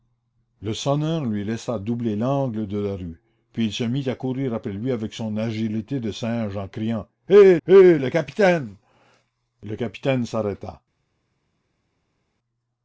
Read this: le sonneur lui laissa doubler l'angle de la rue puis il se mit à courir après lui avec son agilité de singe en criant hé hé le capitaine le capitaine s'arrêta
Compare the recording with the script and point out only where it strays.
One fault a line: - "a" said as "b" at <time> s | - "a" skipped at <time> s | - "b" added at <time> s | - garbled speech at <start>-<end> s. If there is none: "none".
none